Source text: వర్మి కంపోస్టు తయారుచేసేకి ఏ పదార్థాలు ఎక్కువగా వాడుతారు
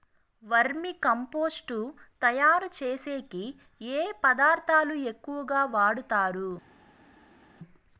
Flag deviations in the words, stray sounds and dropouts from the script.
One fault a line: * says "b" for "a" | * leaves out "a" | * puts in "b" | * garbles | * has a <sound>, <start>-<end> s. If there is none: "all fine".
all fine